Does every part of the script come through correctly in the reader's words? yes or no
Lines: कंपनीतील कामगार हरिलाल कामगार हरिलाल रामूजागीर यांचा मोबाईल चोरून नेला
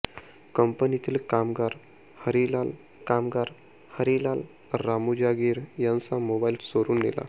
yes